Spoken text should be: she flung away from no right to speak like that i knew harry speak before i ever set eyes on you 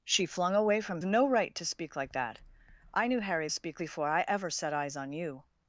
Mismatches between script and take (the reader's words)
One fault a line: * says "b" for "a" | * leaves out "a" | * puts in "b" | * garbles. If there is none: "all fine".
all fine